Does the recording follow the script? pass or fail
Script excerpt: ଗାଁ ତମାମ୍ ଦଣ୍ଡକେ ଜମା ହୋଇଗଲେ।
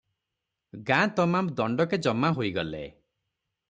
pass